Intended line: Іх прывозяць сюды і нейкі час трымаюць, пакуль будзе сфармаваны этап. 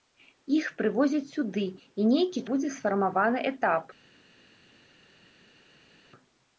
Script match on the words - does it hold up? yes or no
no